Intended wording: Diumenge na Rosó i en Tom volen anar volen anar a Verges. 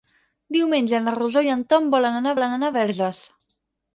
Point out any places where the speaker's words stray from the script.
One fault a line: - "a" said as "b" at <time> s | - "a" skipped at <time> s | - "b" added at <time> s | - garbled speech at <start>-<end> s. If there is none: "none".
none